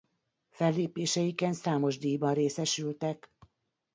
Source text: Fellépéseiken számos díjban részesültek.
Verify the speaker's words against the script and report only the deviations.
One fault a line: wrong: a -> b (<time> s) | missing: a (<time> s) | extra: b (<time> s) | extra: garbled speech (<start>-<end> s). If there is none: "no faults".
no faults